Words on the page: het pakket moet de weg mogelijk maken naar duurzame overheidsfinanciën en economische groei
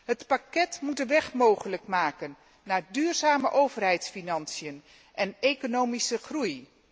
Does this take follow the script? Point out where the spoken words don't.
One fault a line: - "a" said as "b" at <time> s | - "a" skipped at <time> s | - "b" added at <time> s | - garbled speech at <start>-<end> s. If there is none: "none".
none